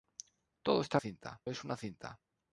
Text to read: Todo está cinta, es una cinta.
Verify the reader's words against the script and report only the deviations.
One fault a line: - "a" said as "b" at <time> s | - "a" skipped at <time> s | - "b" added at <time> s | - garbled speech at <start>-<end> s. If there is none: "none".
none